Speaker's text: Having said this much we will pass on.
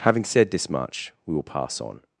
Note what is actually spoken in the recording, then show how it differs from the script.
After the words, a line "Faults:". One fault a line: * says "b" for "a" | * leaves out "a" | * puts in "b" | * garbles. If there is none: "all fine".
Having said this much we will pass on.
Faults:
all fine